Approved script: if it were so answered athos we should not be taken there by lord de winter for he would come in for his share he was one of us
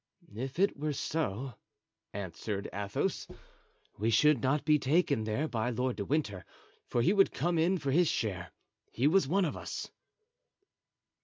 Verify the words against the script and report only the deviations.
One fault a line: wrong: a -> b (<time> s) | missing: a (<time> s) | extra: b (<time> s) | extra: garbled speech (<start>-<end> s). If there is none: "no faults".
no faults